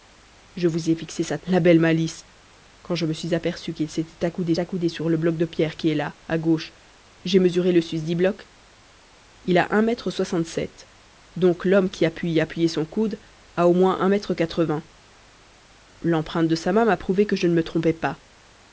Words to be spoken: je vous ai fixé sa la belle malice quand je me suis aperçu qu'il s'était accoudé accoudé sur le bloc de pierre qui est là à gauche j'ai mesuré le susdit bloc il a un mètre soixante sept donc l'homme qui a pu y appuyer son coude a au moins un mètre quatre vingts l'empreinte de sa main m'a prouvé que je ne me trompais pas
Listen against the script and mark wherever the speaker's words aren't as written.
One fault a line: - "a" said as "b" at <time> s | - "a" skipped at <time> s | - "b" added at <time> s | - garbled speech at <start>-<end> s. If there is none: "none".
none